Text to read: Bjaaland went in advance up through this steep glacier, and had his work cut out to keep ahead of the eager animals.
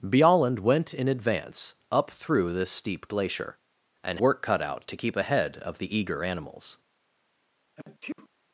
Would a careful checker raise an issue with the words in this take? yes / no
yes